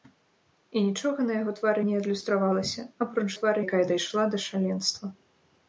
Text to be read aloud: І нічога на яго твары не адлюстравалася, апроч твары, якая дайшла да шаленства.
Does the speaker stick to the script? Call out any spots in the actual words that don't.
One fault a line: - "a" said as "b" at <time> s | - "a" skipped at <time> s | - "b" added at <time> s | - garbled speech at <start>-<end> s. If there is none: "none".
none